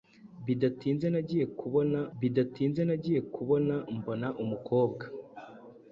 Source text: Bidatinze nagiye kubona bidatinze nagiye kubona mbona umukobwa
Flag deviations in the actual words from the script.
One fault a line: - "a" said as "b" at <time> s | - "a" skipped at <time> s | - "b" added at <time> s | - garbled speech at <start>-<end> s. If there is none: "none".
none